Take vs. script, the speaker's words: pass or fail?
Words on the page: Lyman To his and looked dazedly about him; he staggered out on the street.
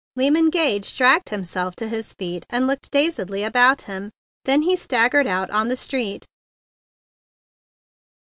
fail